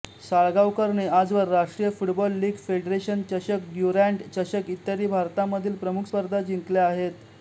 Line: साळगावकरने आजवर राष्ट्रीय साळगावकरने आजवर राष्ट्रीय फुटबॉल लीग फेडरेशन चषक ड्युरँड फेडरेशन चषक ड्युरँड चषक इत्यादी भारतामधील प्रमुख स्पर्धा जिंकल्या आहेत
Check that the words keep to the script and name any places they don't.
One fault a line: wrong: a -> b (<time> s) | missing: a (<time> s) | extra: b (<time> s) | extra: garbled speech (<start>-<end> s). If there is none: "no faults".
missing: साळगावकरने आजवर राष्ट्रीय (1.9 s)
missing: फेडरेशन चषक ड्युरँड (4.2 s)